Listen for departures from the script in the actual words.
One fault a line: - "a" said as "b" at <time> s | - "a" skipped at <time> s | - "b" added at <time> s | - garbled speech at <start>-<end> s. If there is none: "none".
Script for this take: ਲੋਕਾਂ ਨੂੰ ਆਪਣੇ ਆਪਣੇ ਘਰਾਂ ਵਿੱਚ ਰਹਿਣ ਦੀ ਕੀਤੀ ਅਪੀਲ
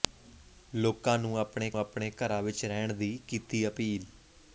none